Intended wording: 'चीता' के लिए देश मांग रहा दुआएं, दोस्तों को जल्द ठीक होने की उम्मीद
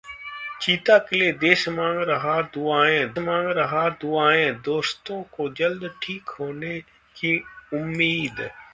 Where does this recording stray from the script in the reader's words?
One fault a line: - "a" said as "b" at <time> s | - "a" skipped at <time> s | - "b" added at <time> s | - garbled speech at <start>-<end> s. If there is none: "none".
- "मांग रहा दुआएं" added at 3.2 s